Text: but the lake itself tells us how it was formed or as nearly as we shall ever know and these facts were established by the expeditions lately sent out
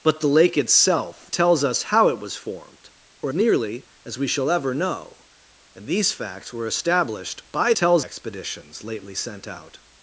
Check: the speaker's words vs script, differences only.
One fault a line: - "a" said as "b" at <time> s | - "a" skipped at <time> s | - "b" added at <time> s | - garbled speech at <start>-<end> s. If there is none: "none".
- "as" skipped at 3.3 s
- "the" said as "tells" at 7.7 s